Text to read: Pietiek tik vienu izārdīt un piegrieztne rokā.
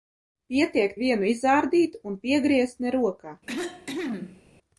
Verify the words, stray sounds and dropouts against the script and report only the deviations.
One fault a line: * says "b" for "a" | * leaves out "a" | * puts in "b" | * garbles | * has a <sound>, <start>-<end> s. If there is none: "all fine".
* leaves out "tik"
* has a cough, 3.5-4.4 s